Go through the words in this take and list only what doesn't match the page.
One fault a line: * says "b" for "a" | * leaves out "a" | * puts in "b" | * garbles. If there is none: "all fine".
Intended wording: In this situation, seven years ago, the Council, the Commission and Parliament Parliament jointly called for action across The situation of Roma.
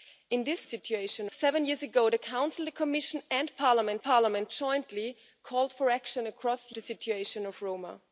all fine